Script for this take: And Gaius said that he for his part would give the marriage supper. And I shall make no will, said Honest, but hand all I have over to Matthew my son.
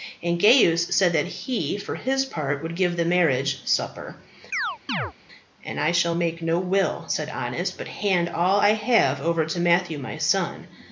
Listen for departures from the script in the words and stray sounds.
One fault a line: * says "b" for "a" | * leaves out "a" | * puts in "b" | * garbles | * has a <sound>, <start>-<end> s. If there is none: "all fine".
* has a chirp, 4.5-5.1 s